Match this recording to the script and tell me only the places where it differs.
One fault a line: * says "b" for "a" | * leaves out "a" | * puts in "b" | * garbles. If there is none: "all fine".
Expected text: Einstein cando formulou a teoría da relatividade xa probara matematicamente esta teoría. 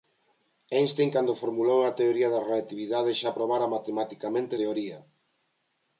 * leaves out "esta"